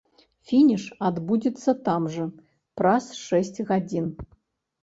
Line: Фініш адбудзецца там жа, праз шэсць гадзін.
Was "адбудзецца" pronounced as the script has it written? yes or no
yes